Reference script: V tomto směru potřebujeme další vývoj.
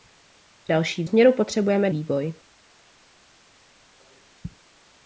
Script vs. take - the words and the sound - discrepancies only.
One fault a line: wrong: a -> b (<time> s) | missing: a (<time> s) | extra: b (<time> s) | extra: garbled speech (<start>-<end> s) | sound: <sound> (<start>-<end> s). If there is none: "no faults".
wrong: tomto -> další (0.7 s)
missing: další (1.9 s)